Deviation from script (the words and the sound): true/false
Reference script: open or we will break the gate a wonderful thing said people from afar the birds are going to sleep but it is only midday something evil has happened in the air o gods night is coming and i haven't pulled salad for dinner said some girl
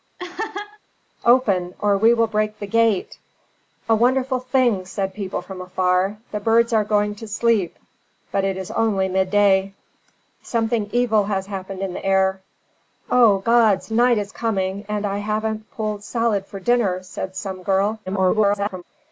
true